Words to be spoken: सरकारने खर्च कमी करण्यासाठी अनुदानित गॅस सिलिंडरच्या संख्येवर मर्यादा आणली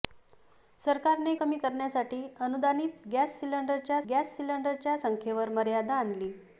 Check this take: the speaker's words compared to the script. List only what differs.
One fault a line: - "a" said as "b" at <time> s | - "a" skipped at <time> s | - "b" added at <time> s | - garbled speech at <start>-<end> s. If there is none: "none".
- "खर्च" skipped at 1.3 s
- "गॅस सिलिंडरच्या" added at 4.1 s